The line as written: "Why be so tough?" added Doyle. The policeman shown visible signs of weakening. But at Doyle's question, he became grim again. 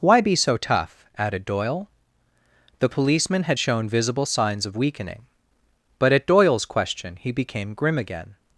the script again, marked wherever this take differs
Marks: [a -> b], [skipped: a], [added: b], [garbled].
"Why be so tough?" added Doyle. The policeman [added: had] shown visible signs of weakening. But at Doyle's question, he became grim again.